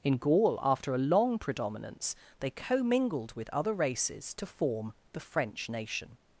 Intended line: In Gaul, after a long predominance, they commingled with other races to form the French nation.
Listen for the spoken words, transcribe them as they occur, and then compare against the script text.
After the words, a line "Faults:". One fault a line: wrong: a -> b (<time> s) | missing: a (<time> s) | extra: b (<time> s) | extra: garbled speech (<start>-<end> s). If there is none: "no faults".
In Gaul, after a long predominance, they commingled with other races to form the French nation.
Faults:
no faults